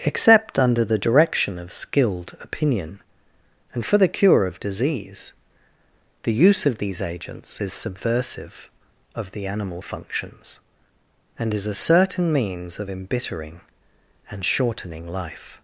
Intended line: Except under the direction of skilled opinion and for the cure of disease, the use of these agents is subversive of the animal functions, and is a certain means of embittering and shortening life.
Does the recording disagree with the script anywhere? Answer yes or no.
no